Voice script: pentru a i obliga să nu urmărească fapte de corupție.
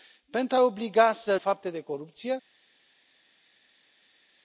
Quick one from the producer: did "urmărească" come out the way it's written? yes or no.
no